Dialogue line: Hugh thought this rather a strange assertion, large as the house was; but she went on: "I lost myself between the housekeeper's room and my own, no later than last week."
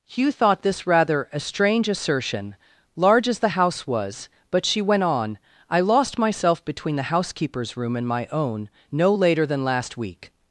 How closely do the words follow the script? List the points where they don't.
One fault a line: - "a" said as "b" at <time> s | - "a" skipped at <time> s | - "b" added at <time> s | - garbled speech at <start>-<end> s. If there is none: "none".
none